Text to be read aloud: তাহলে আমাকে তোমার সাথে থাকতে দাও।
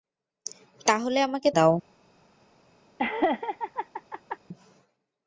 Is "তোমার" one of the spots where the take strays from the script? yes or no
yes